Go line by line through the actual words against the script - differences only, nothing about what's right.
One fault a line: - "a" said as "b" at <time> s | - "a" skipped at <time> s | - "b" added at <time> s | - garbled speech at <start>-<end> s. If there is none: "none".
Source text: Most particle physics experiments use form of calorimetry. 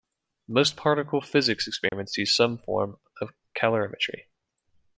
- "some" added at 2.3 s